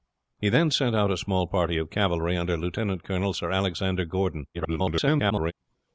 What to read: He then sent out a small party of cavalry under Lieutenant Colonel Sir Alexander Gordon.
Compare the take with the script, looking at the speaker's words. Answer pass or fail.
fail